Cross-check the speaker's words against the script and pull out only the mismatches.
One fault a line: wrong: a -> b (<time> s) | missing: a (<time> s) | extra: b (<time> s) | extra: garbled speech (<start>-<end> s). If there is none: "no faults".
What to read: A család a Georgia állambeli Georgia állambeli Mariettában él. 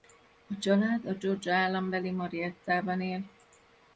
missing: Georgia állambeli (2.1 s)